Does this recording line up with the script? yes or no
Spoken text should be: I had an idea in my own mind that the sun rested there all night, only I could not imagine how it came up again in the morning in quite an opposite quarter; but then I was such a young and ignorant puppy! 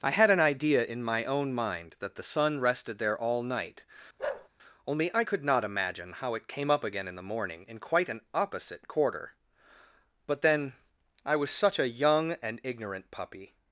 yes